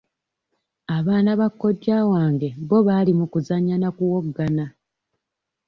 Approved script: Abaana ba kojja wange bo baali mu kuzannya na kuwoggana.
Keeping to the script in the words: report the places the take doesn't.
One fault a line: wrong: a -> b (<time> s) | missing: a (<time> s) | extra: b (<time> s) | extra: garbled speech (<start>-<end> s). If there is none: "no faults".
no faults